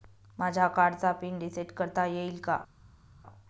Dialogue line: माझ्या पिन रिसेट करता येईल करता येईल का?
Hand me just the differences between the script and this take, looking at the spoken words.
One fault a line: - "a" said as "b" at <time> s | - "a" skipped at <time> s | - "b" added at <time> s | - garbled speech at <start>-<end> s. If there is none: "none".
- "कार्डचा" added at 0.7 s
- "करता येईल" skipped at 2.4 s